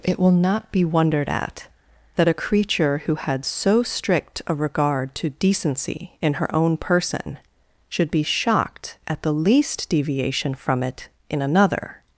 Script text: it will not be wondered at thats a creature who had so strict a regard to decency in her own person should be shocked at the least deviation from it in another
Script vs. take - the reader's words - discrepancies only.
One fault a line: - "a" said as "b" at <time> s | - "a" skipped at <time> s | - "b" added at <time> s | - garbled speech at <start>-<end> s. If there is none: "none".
- "thats" said as "that" at 2.1 s